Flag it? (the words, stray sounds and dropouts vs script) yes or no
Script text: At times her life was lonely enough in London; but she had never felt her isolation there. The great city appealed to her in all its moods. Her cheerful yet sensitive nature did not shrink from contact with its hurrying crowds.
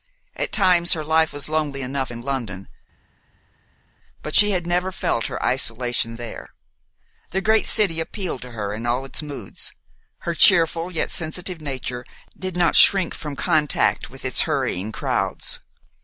no